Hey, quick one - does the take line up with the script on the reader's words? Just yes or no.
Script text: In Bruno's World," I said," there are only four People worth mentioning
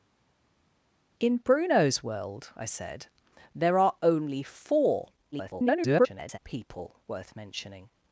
no